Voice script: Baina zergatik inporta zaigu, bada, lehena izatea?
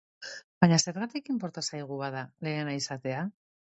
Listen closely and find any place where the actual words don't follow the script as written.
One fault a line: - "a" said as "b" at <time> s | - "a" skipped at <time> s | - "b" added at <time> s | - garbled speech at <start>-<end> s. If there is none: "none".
none